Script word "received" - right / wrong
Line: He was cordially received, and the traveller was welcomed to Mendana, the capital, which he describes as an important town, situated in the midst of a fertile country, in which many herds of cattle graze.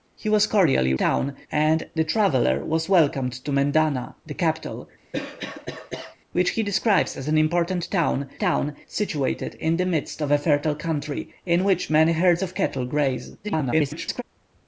wrong